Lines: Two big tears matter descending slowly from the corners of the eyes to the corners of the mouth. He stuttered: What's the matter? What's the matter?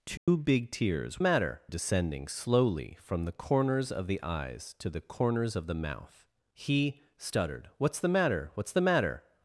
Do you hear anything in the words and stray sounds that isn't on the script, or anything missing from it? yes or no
yes